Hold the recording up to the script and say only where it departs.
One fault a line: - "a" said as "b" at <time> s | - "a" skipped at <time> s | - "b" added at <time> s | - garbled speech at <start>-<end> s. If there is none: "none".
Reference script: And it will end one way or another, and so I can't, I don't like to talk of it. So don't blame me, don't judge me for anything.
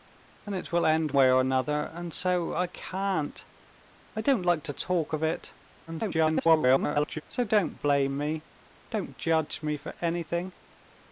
- "one" skipped at 1.1 s
- garbled speech at 5.9-7.2 s